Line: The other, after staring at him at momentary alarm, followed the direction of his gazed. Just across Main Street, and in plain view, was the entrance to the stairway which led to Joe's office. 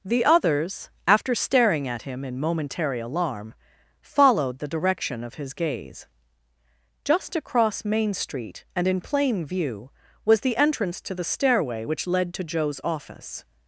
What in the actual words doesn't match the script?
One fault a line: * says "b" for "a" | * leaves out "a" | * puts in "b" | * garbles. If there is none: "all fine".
* says "others" for "other"
* says "in" for "at"
* says "gaze" for "gazed"